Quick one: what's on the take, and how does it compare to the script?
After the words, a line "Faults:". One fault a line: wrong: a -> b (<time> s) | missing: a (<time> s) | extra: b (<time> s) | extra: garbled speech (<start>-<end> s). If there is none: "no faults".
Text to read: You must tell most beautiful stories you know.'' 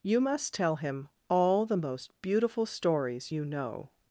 You must tell him all the most beautiful stories you know.''
Faults:
extra: him all the (0.8 s)